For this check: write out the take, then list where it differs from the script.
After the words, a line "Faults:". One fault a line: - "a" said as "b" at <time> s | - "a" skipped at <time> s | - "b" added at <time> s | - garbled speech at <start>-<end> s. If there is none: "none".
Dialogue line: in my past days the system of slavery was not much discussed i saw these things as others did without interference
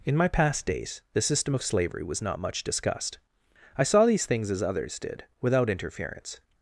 in my past days the system of slavery was not much discussed i saw these things as others did without interference
Faults:
none